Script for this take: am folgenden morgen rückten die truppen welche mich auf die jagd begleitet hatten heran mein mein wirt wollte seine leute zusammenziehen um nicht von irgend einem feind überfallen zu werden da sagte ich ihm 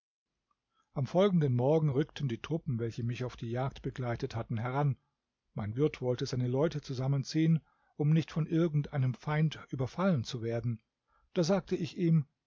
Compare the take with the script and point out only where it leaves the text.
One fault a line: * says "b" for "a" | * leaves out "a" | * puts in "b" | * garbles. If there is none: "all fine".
* leaves out "mein"